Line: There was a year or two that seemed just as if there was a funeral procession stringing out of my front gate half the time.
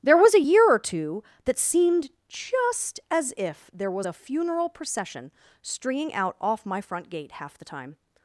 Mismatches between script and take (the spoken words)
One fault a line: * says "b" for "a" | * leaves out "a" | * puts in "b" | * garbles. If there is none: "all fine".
* says "off" for "of"